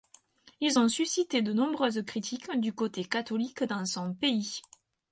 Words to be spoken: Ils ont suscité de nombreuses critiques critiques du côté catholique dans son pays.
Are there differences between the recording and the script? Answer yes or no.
yes